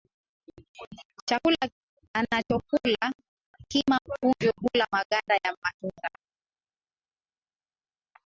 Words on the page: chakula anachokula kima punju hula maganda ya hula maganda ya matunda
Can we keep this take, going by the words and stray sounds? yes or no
no